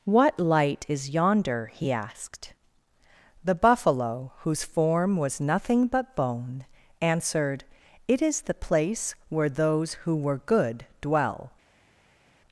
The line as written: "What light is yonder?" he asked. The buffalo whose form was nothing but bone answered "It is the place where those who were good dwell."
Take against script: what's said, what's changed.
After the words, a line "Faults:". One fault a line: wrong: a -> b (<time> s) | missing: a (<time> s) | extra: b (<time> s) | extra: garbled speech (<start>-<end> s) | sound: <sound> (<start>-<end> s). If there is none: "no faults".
"What light is yonder?" he asked. The buffalo whose form was nothing but bone answered "It is the place where those who were good dwell."
Faults:
no faults